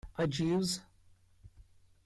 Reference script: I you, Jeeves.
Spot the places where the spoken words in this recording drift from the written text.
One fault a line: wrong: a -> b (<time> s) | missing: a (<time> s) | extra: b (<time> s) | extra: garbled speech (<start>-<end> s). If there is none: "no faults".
no faults